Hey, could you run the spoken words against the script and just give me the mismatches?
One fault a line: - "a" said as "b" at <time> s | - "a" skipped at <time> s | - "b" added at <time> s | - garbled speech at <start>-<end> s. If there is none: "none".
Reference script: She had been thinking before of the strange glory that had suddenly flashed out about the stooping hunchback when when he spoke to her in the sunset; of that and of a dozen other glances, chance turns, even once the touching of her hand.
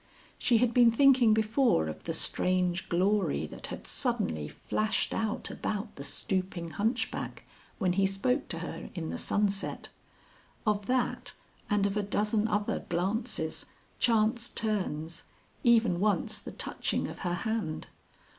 - "when" skipped at 7.9 s